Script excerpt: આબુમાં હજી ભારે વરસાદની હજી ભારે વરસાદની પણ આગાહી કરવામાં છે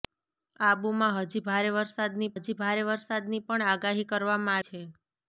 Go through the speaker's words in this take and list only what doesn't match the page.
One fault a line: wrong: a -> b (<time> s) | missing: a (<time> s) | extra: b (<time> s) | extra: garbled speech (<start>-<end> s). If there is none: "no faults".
no faults